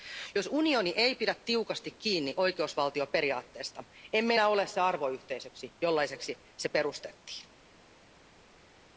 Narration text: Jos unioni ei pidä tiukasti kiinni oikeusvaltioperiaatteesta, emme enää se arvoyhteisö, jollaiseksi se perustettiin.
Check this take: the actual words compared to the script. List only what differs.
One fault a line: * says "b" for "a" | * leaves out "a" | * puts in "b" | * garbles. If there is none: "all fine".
* puts in "ole"